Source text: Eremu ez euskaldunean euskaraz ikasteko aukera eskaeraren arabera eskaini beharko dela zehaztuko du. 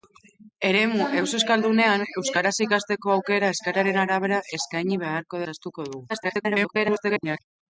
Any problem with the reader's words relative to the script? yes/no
yes